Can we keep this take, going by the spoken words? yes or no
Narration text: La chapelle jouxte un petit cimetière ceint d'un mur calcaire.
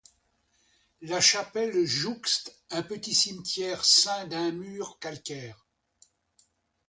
yes